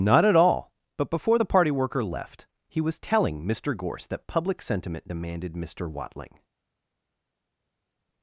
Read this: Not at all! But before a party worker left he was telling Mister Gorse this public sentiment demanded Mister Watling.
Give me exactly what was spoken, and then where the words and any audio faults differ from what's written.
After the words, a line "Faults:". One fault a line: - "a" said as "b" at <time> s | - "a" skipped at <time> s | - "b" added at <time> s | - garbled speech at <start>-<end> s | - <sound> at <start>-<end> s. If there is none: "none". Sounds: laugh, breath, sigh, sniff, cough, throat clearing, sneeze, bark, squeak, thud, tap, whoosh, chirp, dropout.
Not at all! But before the party worker left he was telling Mister Gorse that public sentiment demanded Mister Watling.
Faults:
- "a" said as "the" at 1.3 s
- "this" said as "that" at 4.1 s